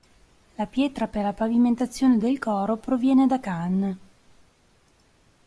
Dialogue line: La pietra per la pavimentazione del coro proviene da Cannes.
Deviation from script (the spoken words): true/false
false